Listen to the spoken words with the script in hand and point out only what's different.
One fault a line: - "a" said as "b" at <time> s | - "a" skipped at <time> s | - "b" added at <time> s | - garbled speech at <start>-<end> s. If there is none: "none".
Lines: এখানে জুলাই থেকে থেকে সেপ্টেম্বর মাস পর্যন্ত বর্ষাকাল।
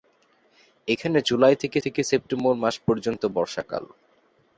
none